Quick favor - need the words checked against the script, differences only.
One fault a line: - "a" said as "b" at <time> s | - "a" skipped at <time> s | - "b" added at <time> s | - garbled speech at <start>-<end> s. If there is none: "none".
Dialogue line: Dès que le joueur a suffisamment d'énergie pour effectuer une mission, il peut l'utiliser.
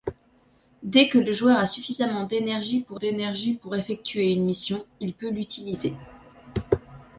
- "d'énergie pour" added at 2.9 s